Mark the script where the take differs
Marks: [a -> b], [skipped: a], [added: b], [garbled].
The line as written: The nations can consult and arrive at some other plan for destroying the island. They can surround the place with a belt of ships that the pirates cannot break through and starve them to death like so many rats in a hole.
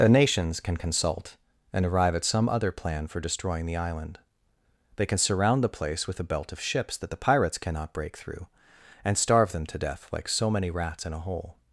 The nations can consult and arrive at some other plan for destroying the island. They can surround the place with a belt of ships that the pirates cannot break through and starve them to death like so many rats in a hole.